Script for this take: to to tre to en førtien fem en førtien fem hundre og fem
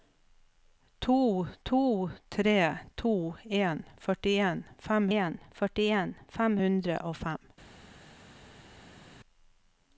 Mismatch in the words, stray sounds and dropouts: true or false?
false